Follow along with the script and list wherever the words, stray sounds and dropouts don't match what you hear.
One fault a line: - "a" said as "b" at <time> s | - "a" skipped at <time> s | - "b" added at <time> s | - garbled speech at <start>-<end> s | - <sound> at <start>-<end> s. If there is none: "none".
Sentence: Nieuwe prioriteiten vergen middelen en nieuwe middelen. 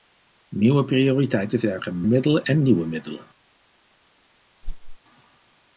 - whoosh at 4.6-5.0 s